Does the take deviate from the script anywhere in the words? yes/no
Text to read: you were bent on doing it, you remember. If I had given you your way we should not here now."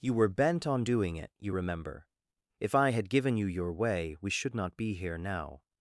yes